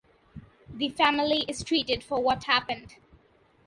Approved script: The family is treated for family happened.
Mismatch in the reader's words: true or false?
true